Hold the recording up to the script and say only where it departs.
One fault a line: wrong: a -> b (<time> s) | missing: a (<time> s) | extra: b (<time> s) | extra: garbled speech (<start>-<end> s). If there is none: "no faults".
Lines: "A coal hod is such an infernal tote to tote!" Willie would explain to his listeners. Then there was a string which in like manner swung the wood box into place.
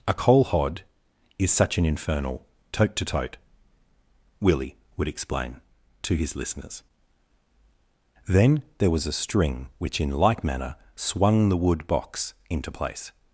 no faults